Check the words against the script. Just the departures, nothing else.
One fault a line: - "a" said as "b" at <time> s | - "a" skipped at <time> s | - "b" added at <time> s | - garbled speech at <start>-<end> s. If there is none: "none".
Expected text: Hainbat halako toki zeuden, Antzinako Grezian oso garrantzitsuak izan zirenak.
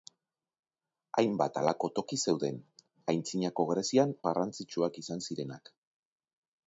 - "oso" skipped at 4.2 s